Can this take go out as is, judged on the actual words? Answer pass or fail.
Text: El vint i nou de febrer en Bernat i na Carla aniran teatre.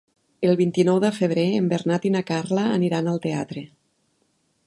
fail